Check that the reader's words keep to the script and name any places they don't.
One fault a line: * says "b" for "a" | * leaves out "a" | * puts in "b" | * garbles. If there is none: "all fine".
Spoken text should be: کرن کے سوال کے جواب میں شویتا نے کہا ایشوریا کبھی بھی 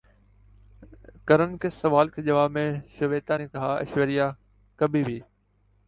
all fine